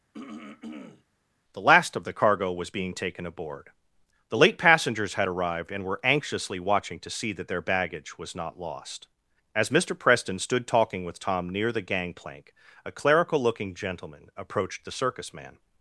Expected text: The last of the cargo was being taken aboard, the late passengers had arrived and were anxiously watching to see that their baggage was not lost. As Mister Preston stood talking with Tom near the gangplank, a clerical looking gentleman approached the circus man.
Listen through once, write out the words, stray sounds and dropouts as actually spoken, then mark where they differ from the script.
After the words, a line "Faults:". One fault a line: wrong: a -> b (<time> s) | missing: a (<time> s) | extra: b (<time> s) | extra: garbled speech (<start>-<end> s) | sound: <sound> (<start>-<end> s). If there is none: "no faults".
The last of the cargo was being taken aboard, the late passengers had arrived and were anxiously watching to see that their baggage was not lost. As Mister Preston stood talking with Tom near the gangplank, a clerical looking gentleman approached the circus man.
Faults:
sound: throat clearing (0.1-1.0 s)